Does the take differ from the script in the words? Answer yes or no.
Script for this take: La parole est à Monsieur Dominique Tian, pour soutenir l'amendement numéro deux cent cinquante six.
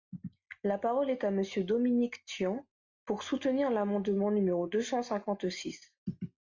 no